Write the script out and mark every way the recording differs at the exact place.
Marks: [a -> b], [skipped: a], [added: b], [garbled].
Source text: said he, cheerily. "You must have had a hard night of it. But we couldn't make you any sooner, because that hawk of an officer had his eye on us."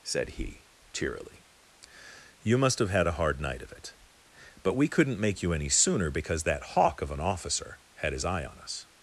said he, cheerily. "You must have had a hard night of it. But we couldn't make you any sooner, because that hawk of an officer had his eye on us."